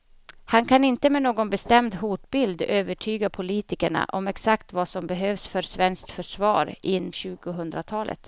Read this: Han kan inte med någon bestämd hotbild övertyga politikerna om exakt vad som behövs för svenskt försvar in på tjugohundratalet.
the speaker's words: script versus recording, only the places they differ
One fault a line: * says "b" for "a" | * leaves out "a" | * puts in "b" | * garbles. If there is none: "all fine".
* leaves out "på"